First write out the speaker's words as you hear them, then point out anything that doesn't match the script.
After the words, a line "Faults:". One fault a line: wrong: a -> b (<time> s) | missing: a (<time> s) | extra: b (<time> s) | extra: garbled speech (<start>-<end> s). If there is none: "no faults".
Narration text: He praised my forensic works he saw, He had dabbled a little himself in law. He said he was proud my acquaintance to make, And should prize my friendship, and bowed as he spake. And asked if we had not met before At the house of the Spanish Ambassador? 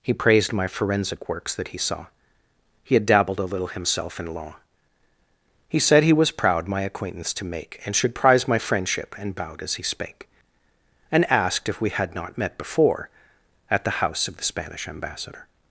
He praised my forensic works that he saw, He had dabbled a little himself in law. He said he was proud my acquaintance to make, And should prize my friendship, and bowed as he spake. And asked if we had not met before At the house of the Spanish Ambassador?
Faults:
extra: that (1.6 s)